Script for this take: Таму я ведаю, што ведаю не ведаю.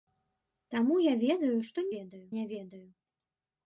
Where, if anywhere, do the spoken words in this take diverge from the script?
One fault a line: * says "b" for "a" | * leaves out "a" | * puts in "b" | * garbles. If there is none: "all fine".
all fine